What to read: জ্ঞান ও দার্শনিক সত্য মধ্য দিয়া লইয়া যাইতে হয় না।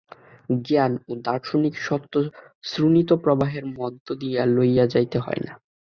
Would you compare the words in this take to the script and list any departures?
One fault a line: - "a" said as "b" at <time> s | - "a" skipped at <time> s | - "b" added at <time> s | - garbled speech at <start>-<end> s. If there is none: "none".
- "শ্রোণিতপ্রবাহের" added at 2.6 s